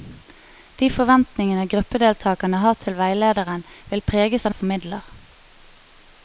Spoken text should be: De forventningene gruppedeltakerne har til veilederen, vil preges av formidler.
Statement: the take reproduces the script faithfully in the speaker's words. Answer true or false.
true